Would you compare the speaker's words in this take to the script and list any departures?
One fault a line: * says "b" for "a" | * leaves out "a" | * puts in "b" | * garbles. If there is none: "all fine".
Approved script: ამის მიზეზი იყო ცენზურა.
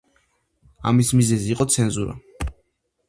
all fine